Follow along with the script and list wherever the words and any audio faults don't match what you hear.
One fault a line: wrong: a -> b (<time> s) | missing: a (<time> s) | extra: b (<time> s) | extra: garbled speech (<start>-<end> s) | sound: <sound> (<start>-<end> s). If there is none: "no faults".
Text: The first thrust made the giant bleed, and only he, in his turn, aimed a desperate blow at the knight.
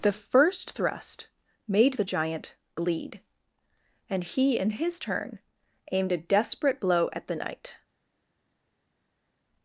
missing: only (4.2 s)